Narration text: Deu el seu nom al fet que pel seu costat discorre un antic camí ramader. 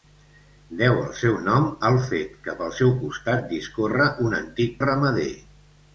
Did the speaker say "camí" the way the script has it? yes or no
no